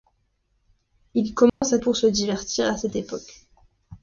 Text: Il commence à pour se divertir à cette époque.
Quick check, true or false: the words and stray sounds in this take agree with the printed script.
false